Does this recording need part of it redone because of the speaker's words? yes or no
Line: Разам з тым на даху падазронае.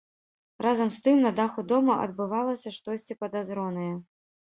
yes